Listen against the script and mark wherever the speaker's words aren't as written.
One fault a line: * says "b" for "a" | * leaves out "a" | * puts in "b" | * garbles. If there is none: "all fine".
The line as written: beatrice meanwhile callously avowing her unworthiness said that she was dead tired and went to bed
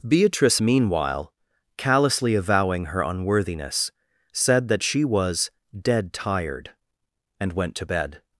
all fine